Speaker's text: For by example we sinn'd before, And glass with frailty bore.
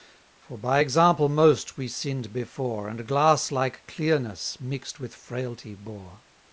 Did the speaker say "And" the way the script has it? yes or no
yes